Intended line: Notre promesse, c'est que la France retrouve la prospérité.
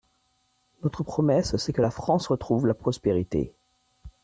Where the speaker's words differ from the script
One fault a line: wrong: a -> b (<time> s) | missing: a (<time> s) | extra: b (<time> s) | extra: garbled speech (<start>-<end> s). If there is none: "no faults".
no faults